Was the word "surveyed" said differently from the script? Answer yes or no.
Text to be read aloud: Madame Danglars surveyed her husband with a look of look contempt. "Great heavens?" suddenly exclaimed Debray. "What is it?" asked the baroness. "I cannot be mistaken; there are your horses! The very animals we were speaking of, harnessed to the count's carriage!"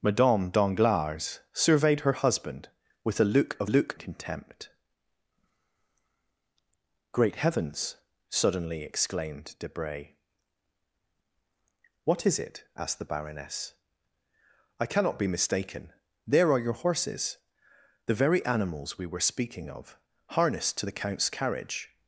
no